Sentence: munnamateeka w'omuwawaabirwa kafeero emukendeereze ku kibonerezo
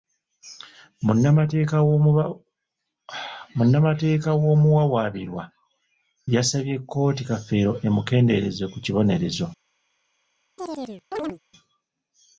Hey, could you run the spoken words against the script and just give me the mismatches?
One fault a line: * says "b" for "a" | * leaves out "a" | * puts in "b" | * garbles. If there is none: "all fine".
* puts in "yasabye kkooti"